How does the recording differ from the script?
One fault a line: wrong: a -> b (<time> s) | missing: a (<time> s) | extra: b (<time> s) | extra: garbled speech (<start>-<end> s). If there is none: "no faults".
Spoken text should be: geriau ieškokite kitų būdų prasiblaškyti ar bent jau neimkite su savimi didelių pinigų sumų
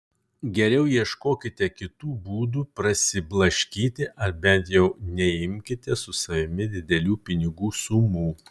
no faults